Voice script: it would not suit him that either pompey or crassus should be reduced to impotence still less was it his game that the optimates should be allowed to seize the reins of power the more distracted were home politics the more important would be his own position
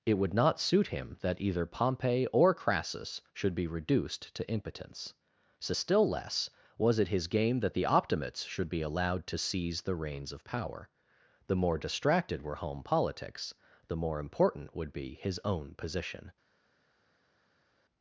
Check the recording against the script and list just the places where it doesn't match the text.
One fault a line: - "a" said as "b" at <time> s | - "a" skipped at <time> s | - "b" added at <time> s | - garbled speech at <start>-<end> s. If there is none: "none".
- "so" added at 5.6 s